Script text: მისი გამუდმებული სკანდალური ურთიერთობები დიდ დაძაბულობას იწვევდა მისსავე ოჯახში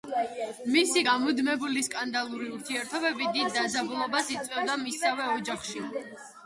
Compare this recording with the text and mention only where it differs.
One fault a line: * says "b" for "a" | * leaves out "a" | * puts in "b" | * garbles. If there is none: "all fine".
all fine